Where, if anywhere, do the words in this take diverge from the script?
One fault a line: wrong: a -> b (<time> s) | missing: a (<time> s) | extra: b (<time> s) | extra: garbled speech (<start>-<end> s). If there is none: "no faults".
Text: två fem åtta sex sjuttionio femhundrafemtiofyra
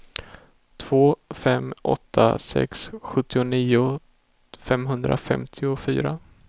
no faults